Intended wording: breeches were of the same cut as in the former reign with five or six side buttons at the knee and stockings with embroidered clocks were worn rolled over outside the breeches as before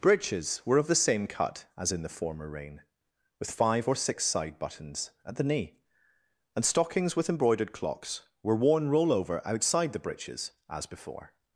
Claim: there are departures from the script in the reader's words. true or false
true